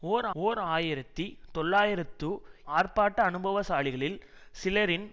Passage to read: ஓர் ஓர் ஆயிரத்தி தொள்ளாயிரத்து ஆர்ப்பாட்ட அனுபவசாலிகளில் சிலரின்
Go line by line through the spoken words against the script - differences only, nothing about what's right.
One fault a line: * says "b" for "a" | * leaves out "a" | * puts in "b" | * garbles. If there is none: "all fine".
all fine